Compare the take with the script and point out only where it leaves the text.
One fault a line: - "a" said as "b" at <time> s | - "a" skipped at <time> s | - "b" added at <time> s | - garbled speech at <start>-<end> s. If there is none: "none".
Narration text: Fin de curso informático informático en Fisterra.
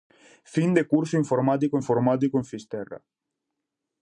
none